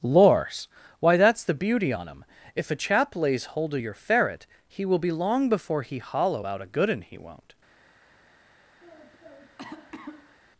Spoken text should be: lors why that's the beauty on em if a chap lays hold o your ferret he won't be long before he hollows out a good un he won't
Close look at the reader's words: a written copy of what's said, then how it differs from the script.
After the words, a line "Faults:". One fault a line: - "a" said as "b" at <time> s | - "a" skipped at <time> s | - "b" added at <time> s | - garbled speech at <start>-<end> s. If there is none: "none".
lors why that's the beauty on em if a chap lays hold o your ferret he will be long before he hollow out a good un he won't
Faults:
- "won't" said as "will" at 4.8 s
- "hollows" said as "hollow" at 6.0 s